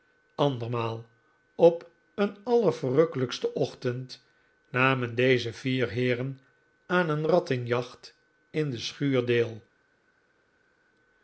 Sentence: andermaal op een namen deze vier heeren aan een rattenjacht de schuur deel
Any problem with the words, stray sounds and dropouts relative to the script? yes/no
yes